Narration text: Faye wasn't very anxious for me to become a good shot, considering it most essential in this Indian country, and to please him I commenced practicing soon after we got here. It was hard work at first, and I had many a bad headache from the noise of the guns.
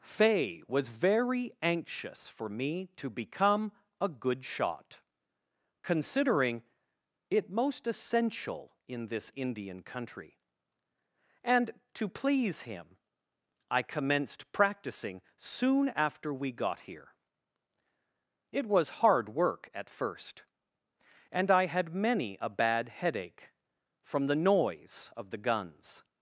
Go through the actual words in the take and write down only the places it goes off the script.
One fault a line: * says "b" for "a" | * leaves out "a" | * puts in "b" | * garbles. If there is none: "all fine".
* says "was" for "wasn't"